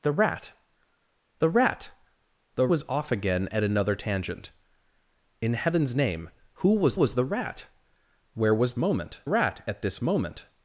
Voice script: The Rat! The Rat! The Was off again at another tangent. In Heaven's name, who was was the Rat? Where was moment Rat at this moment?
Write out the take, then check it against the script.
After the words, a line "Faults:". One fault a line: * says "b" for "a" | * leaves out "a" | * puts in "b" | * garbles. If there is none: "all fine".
The Rat! The Rat! The Was off again at another tangent. In Heaven's name, who was was the Rat? Where was moment Rat at this moment?
Faults:
all fine